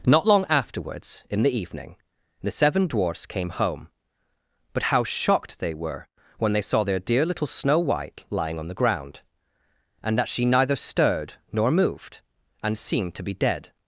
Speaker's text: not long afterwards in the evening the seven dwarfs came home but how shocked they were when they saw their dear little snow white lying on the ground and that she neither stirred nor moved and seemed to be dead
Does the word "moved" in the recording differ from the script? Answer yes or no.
no